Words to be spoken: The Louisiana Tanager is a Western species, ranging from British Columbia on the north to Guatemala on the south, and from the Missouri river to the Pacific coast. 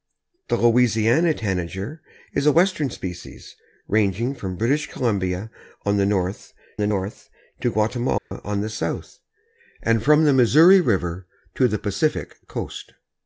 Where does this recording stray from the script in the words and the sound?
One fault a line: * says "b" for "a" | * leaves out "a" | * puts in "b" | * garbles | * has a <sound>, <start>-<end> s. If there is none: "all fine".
* puts in "the north"
* has a dropout, 8.2-8.3 s